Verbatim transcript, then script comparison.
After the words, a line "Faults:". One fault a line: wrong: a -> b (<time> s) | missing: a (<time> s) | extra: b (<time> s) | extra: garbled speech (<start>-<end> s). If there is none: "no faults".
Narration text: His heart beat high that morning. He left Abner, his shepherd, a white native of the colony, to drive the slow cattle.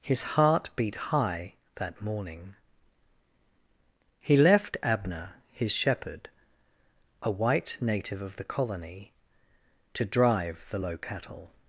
His heart beat high that morning. He left Abner, his shepherd, a white native of the colony, to drive the low cattle.
Faults:
wrong: slow -> low (10.8 s)